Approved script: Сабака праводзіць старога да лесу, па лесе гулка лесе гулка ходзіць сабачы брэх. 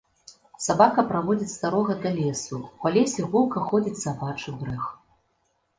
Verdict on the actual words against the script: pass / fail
fail